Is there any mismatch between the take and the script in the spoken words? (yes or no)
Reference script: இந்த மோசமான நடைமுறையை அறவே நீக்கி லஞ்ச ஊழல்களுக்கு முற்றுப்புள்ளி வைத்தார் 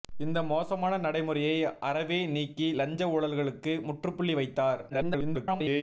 yes